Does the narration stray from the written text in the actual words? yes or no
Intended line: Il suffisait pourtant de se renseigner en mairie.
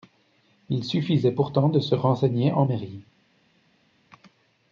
no